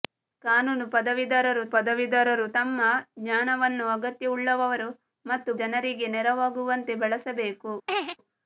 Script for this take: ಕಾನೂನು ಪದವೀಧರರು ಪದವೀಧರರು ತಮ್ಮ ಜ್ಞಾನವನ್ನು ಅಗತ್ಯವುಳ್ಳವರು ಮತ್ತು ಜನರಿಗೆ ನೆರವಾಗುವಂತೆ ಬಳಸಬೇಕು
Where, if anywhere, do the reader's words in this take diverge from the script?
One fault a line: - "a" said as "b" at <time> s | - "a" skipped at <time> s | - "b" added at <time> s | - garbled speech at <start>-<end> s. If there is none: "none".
none